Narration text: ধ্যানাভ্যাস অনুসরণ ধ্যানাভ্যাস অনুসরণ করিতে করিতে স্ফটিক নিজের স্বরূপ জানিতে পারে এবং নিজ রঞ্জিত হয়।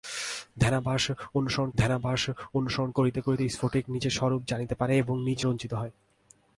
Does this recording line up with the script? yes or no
yes